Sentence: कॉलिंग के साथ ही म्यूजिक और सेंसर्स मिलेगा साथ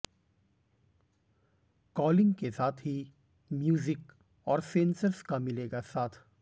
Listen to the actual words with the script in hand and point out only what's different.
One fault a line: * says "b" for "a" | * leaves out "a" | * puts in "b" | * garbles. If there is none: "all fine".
* puts in "का"